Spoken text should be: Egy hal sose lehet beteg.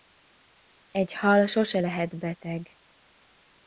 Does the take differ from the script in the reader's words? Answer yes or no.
no